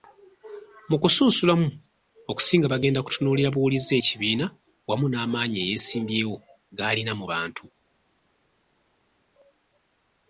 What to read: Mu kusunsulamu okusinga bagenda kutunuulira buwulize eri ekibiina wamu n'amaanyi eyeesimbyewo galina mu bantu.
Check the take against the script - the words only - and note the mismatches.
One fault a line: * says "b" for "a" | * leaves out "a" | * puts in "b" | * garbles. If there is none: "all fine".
* leaves out "eri"